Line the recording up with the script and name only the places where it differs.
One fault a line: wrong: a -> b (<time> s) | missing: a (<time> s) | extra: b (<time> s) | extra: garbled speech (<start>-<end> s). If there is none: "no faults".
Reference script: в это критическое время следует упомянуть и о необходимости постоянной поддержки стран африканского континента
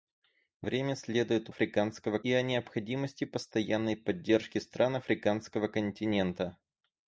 missing: это критическое (0.7 s)
wrong: упомянуть -> африканского (1.5 s)